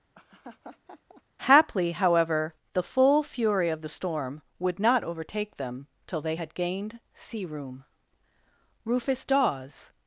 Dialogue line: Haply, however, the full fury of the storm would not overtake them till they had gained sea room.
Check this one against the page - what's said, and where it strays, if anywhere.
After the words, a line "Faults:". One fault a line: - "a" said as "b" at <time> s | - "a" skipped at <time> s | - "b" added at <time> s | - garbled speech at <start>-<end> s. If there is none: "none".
Haply, however, the full fury of the storm would not overtake them till they had gained sea room. Rufus Dawes
Faults:
- "Rufus Dawes" added at 8.8 s